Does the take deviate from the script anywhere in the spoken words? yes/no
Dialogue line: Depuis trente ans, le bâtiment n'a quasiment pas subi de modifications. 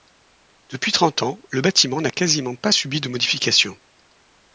no